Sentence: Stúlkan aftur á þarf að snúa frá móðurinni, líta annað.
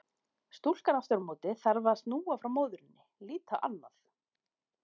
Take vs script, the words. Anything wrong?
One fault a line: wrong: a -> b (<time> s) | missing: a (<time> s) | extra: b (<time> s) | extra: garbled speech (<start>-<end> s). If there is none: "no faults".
extra: móti (1.3 s)